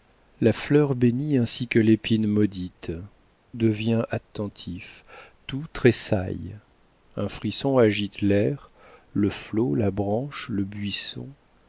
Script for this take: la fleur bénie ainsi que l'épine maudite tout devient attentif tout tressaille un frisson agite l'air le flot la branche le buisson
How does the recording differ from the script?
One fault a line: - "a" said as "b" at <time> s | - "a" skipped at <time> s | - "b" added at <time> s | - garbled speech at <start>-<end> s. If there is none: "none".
- "tout" skipped at 2.9 s